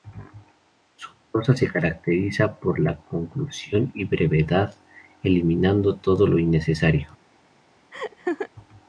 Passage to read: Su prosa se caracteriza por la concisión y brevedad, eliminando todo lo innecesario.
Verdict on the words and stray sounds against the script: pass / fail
fail